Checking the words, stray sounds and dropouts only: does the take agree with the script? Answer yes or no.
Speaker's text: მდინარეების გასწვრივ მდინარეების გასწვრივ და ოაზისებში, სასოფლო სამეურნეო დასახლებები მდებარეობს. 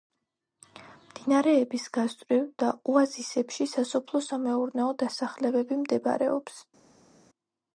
no